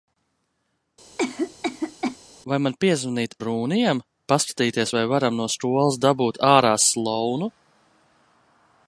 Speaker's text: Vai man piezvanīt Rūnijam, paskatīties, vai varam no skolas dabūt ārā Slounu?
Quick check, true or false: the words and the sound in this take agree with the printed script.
false